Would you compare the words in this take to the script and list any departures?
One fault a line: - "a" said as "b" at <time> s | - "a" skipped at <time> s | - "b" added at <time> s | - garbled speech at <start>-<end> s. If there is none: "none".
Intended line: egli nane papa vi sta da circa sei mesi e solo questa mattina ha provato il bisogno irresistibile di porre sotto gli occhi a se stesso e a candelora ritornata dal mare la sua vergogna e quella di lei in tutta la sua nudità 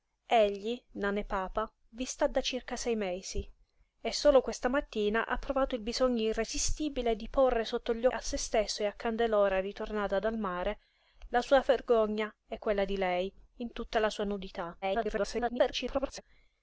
- "occhi" skipped at 8.1 s
- garbled speech at 14.8-16.2 s